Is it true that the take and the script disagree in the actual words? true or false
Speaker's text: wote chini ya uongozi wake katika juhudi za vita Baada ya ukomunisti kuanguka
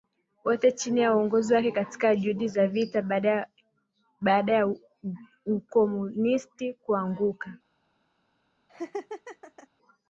false